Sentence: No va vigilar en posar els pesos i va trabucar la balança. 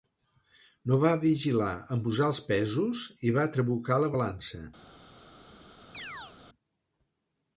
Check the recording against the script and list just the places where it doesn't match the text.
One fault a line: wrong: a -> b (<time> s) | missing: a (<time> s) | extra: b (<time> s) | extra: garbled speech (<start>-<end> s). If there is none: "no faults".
no faults